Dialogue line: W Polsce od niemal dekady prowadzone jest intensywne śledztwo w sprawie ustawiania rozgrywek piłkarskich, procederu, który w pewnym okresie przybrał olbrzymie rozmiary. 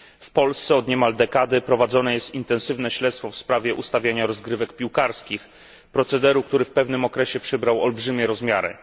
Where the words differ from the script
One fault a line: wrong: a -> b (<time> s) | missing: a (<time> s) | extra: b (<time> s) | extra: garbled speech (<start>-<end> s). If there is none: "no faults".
no faults